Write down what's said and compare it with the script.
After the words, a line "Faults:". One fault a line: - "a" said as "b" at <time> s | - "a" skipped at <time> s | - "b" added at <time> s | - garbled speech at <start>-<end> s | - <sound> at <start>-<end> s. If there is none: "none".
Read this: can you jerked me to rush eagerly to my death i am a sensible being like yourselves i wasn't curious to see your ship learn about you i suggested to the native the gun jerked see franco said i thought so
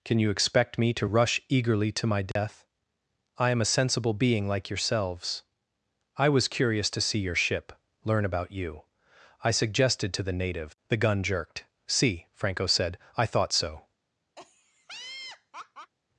can you expect me to rush eagerly to my death i am a sensible being like yourselves i was curious to see your ship learn about you i suggested to the native the gun jerked see franco said i thought so
Faults:
- "jerked" said as "expect" at 0.3 s
- dropout at 2.3-2.4 s
- "wasn't" said as "was" at 6.3 s
- laugh at 14.4-15.9 s